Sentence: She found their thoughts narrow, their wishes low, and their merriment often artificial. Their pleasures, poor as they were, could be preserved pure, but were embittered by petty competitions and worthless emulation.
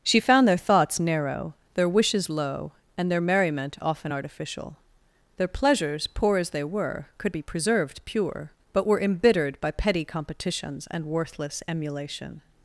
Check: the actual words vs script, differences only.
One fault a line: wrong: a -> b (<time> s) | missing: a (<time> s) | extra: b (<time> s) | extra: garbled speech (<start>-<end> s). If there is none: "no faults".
no faults